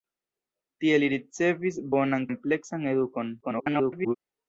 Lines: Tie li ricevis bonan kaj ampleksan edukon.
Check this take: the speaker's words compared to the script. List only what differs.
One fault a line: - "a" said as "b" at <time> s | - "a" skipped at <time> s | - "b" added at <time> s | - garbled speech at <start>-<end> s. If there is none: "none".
- "kaj" skipped at 2.3 s
- garbled speech at 3.4-4.2 s